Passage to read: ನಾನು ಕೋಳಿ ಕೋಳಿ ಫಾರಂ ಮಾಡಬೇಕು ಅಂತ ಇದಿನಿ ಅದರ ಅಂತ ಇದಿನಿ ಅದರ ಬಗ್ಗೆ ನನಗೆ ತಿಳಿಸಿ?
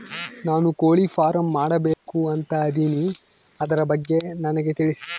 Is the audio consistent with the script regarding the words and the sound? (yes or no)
no